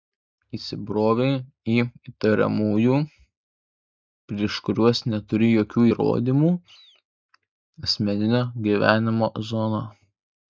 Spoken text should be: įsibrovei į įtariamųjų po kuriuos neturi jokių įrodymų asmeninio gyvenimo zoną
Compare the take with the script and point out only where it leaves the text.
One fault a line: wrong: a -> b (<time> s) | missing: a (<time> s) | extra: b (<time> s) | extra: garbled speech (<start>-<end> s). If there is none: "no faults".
wrong: po -> prieš (4.3 s)